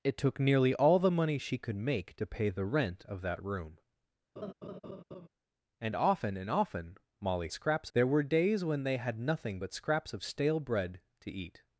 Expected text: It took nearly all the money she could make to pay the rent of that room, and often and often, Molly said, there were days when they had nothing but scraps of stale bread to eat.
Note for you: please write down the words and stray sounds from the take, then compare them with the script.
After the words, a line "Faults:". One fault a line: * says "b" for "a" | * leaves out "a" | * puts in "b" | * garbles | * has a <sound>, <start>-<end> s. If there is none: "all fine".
It took nearly all the money she could make to pay the rent of that room, and often and often, Molly scraps, there were days when they had nothing but scraps of stale bread to eat.
Faults:
* has a laugh, 4.4-5.3 s
* says "scraps" for "said"